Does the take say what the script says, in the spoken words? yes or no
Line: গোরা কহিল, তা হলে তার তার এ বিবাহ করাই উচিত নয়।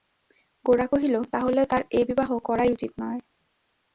no